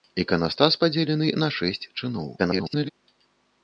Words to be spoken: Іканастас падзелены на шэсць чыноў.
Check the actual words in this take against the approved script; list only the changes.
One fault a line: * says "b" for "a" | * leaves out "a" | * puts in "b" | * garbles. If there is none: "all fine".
* garbles